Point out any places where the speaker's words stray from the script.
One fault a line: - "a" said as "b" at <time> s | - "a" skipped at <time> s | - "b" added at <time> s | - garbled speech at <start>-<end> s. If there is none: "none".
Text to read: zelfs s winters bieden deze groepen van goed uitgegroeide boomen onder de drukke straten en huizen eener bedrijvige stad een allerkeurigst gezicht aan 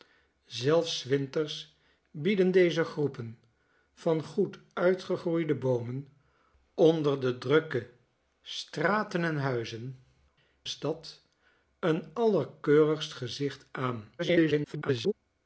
- "eener bedrijvige" skipped at 10.0 s
- garbled speech at 14.2-15.1 s